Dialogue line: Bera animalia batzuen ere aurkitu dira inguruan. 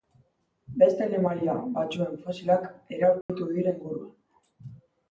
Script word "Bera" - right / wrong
wrong